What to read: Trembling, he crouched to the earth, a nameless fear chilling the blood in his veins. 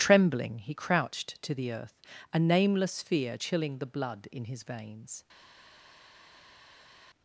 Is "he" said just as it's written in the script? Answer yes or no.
yes